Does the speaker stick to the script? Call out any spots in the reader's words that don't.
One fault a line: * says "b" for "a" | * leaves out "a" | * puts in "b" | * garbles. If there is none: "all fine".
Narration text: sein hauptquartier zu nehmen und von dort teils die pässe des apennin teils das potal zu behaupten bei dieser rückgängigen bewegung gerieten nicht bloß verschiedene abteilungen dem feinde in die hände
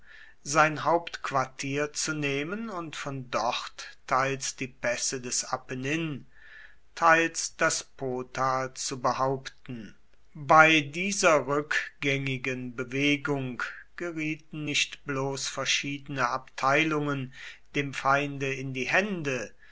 all fine